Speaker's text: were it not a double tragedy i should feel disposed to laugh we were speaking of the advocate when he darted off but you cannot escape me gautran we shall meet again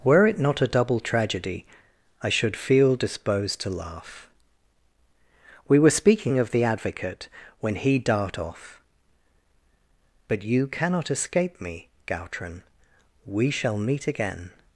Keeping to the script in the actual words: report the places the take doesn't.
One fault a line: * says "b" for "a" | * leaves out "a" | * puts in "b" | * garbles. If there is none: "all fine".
* says "dart" for "darted"